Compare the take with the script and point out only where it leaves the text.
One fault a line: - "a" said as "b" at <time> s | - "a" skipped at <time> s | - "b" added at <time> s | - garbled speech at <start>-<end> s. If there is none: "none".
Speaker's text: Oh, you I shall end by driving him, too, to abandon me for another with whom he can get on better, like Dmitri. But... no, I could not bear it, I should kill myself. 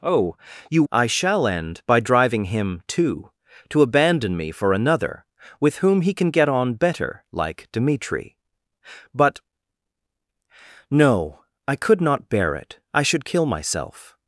none